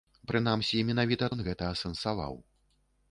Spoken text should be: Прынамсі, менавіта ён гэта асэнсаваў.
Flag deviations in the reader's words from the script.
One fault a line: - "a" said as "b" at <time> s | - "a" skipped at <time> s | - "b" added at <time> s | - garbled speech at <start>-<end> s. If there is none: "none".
none